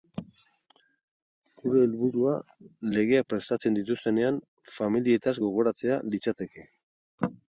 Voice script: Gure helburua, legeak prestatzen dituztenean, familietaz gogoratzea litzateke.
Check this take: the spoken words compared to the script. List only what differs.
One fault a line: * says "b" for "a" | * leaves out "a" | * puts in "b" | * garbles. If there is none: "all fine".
all fine